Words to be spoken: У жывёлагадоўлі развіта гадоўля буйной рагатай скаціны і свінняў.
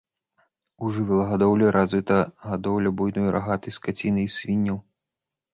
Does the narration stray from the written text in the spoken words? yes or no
no